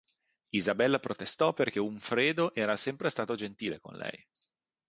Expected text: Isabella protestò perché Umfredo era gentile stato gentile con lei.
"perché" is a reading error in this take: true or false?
false